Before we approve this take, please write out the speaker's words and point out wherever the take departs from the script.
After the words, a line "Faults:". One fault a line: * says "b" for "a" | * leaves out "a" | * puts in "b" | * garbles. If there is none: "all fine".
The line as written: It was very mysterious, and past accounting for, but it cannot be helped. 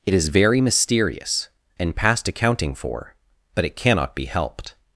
It is very mysterious, and past accounting for, but it cannot be helped.
Faults:
* says "is" for "was"